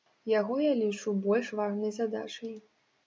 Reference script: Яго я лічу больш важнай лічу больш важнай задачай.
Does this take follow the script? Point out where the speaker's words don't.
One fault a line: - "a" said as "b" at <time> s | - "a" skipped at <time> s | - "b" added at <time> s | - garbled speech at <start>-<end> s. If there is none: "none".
- "лічу больш важнай" skipped at 1.9 s